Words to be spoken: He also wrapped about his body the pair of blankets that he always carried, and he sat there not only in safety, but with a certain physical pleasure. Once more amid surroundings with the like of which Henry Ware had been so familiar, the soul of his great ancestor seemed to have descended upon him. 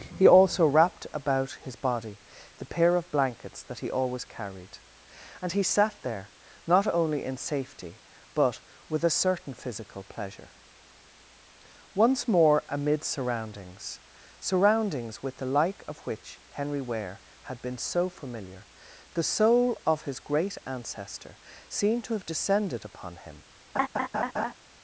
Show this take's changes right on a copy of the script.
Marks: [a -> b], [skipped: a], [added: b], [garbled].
He also wrapped about his body the pair of blankets that he always carried, and he sat there not only in safety, but with a certain physical pleasure. Once more amid surroundings [added: surroundings] with the like of which Henry Ware had been so familiar, the soul of his great ancestor seemed to have descended upon him.